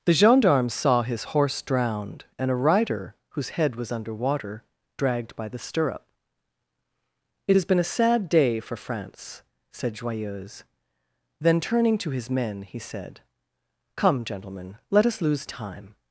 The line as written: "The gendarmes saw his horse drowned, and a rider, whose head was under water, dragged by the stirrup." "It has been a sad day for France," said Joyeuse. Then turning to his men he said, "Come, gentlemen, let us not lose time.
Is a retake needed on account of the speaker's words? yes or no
yes